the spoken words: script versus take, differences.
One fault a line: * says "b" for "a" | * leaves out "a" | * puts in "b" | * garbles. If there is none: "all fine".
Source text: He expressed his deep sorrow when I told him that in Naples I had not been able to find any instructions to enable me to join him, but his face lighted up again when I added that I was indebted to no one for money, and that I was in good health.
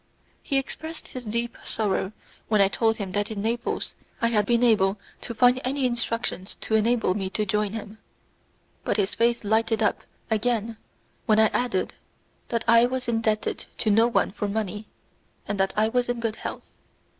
* leaves out "not"